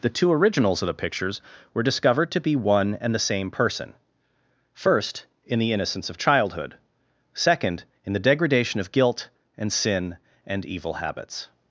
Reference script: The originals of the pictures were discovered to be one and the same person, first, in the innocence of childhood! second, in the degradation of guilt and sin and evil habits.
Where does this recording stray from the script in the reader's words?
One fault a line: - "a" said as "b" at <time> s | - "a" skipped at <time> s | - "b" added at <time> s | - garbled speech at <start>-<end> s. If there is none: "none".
- "two" added at 0.1 s